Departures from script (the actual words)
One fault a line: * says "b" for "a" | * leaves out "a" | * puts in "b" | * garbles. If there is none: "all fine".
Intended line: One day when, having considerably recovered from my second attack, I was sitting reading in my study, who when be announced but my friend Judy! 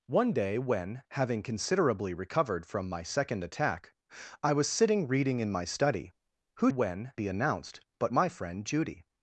all fine